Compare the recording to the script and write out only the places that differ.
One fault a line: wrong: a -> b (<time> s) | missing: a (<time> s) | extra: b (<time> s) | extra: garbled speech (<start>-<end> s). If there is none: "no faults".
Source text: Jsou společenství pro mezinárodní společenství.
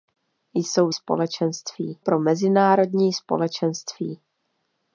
no faults